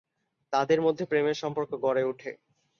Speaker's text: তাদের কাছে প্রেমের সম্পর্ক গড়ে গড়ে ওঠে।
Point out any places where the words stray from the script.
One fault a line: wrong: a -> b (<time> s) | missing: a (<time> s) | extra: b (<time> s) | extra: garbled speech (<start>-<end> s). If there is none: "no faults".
wrong: কাছে -> মধ্যে (0.8 s)
missing: গড়ে (2.0 s)